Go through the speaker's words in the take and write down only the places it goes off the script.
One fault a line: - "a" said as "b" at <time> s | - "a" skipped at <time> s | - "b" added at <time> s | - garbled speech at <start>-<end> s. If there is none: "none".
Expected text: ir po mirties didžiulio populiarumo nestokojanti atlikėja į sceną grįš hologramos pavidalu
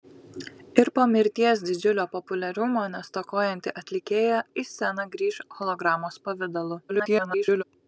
- garbled speech at 6.9-7.6 s